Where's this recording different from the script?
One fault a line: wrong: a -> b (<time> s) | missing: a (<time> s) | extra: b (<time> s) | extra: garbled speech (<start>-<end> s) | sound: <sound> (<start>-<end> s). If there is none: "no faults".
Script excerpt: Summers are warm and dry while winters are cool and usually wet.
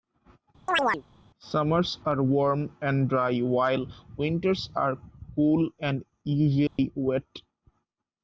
sound: chirp (0.7-1.0 s)
sound: dropout (6.7-6.8 s)